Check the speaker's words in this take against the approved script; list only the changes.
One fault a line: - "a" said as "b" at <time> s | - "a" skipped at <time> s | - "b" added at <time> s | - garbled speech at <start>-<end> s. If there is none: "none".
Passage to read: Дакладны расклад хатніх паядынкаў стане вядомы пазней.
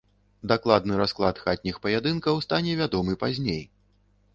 none